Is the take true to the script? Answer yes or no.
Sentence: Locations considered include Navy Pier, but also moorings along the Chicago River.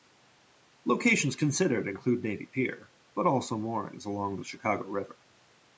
yes